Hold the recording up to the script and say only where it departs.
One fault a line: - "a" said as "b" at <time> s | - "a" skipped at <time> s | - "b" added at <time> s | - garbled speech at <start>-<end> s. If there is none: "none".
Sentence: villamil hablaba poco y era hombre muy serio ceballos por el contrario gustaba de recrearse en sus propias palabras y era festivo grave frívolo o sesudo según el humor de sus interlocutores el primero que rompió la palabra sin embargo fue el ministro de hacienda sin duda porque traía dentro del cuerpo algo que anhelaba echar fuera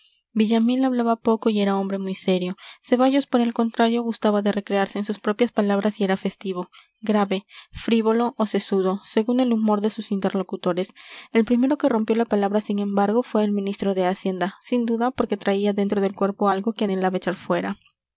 none